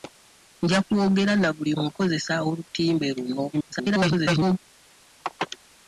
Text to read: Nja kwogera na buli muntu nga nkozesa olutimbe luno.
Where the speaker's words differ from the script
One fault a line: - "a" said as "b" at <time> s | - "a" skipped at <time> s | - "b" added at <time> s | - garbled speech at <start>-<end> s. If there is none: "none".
- "muntu nga" skipped at 1.7 s
- garbled speech at 3.5-4.6 s